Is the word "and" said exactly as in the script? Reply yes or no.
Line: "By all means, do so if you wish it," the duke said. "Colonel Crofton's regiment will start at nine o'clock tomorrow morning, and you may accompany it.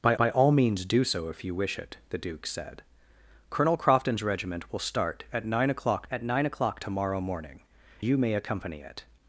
no